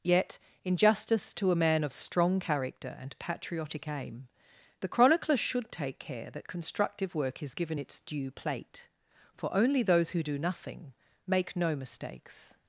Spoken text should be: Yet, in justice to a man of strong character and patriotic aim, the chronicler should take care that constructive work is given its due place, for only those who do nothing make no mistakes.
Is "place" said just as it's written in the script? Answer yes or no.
no